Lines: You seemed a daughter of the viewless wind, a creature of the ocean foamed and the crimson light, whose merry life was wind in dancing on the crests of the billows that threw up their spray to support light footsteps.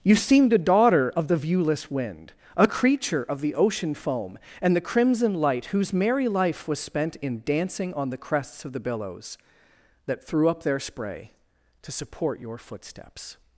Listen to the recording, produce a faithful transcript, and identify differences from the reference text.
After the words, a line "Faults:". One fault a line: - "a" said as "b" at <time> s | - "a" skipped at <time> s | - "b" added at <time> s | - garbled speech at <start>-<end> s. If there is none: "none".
You seemed a daughter of the viewless wind, a creature of the ocean foam and the crimson light, whose merry life was spent in dancing on the crests of the billows that threw up their spray to support your footsteps.
Faults:
- "foamed" said as "foam" at 3.9 s
- "wind" said as "spent" at 6.8 s
- "light" said as "your" at 12.4 s